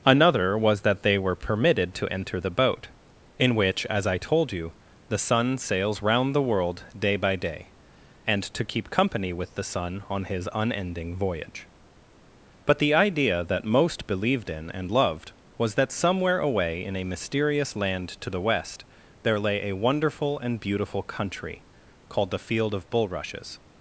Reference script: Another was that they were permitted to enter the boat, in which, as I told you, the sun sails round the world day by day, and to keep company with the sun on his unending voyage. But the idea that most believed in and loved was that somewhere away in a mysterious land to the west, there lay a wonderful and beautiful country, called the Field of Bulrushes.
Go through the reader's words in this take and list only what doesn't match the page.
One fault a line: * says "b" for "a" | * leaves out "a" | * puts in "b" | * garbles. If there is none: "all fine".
all fine